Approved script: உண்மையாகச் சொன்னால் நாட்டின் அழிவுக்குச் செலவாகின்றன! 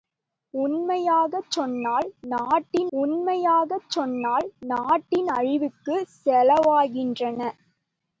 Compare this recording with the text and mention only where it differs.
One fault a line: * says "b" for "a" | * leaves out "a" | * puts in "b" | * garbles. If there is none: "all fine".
* puts in "உண்மையாகச் சொன்னால் நாட்டின்"